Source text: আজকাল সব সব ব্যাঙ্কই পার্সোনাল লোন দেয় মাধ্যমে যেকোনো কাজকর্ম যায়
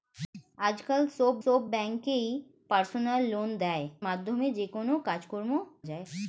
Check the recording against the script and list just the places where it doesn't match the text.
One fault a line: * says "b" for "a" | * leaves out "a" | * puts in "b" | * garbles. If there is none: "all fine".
all fine